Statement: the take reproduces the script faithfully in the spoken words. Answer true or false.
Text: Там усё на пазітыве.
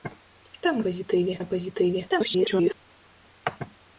false